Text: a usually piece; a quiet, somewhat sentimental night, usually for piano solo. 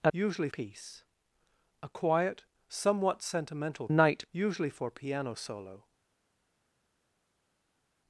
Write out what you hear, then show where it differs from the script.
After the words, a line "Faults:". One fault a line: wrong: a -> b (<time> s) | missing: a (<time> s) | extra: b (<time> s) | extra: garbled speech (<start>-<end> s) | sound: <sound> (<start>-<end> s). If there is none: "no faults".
a usually piece; a quiet, somewhat sentimental night, usually for piano solo.
Faults:
no faults